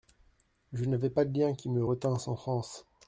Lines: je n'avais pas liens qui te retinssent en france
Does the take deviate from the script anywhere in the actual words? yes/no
yes